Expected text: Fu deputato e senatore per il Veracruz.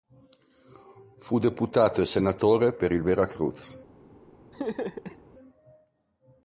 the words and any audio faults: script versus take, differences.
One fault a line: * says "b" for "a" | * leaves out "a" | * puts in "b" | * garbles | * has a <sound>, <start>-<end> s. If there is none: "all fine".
* has a laugh, 4.5-5.2 s